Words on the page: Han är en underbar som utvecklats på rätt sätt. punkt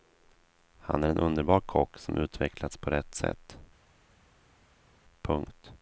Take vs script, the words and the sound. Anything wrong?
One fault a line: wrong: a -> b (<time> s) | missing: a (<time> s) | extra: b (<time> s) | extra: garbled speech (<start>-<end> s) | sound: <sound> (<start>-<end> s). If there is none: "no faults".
extra: kock (1.6 s)